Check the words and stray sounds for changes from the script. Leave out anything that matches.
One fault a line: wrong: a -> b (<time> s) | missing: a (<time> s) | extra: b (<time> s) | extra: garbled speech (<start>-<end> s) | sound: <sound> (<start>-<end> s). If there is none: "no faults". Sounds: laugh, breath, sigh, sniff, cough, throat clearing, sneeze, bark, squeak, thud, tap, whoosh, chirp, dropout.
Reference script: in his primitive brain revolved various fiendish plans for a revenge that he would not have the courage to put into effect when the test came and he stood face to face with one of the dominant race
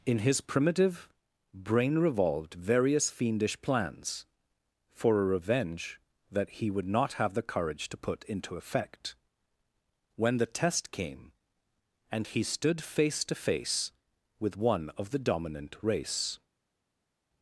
no faults